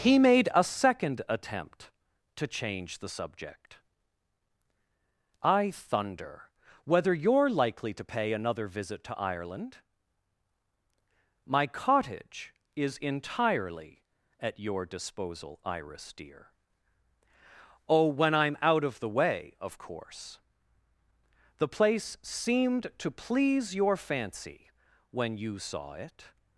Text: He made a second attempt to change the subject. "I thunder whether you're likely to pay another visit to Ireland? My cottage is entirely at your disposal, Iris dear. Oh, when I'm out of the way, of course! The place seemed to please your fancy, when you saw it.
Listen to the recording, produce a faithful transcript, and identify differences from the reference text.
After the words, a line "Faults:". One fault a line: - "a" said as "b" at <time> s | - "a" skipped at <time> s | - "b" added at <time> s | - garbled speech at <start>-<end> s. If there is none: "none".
He made a second attempt to change the subject. "I thunder whether you're likely to pay another visit to Ireland? My cottage is entirely at your disposal, Iris dear. Oh, when I'm out of the way, of course! The place seemed to please your fancy, when you saw it.
Faults:
none